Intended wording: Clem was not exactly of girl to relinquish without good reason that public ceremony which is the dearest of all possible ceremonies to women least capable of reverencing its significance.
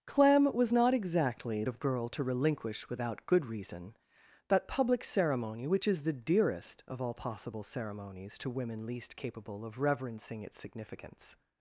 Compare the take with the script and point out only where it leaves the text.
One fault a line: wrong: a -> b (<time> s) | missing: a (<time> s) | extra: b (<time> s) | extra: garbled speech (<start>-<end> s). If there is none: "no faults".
no faults